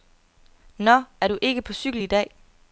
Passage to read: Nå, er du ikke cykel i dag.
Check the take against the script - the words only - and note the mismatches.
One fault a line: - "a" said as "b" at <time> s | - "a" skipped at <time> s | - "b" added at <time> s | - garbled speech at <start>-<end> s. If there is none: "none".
- "på" added at 1.6 s